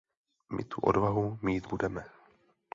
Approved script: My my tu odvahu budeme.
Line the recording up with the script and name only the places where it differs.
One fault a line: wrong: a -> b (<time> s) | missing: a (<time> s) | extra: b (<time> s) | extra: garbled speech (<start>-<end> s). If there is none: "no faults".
missing: my (0.6 s)
extra: mít (1.4 s)